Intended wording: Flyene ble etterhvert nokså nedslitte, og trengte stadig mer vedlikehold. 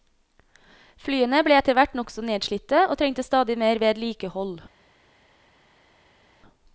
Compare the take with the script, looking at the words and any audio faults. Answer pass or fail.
pass